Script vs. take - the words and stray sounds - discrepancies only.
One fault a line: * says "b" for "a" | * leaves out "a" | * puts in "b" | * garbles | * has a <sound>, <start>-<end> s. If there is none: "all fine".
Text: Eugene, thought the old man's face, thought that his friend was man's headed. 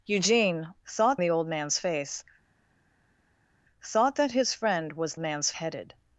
all fine